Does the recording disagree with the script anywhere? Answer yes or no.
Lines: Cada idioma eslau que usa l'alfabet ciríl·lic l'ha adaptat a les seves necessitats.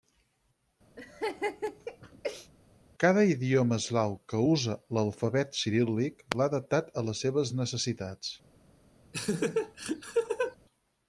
no